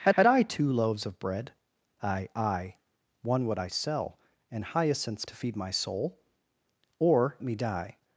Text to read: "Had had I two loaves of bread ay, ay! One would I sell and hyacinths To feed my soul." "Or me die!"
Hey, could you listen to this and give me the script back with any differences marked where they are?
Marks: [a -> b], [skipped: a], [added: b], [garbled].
"Had had I two loaves of bread ay, ay! One would I sell and hyacinths To feed my soul." "Or me die!"